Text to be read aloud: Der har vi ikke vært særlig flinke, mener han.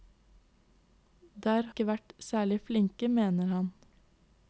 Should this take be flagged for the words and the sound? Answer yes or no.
yes